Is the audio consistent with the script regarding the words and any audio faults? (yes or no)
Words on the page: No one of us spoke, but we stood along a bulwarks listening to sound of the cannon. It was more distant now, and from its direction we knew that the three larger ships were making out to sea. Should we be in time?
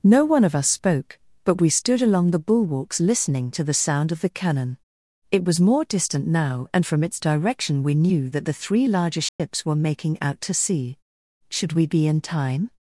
no